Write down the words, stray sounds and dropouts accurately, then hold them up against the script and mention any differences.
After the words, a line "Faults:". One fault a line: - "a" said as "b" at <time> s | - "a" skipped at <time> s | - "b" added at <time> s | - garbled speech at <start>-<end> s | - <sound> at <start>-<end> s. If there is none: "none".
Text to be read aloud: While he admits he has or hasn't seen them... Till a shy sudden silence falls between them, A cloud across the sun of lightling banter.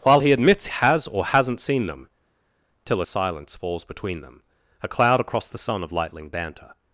While he admits has or hasn't seen them... Till a silence falls between them, A cloud across the sun of lightling banter.
Faults:
- "he" skipped at 0.7 s
- "shy sudden" skipped at 3.1 s